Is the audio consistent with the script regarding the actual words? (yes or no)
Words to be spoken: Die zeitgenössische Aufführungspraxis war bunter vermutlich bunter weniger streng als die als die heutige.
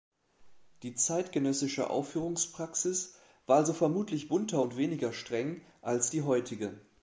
no